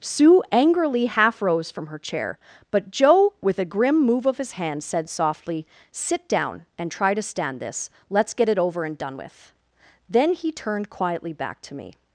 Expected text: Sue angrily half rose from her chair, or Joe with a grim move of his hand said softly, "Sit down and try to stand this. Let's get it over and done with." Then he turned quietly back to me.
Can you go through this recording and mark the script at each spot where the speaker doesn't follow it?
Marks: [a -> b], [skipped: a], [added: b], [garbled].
Sue angrily half rose from her chair, [or -> but] Joe with a grim move of his hand said softly, "Sit down and try to stand this. Let's get it over and done with." Then he turned quietly back to me.